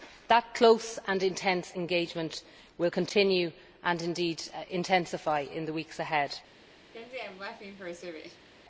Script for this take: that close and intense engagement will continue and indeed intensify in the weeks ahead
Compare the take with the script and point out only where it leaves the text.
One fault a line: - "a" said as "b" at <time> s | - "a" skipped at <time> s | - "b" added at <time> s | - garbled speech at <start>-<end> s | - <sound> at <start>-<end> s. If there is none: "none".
- laugh at 6.9-8.5 s